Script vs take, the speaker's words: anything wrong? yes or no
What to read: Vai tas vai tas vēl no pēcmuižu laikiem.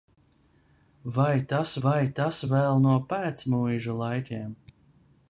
no